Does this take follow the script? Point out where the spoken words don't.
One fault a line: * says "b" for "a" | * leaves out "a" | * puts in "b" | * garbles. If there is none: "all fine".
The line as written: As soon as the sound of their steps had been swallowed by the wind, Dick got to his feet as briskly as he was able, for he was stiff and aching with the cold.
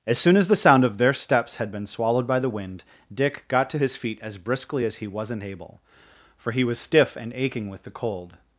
* says "wasn't" for "was"